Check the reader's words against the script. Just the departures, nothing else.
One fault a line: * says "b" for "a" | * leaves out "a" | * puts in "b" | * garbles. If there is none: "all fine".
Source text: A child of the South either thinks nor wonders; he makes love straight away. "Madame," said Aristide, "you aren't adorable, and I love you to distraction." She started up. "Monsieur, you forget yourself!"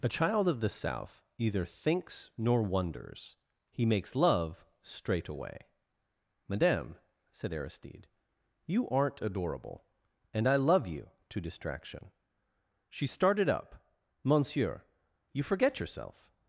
all fine